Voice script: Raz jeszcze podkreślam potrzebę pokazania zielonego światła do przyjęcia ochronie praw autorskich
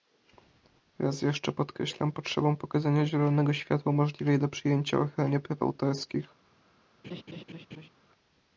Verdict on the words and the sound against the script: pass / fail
fail